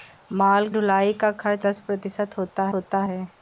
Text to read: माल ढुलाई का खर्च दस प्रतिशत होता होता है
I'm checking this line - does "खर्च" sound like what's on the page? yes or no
yes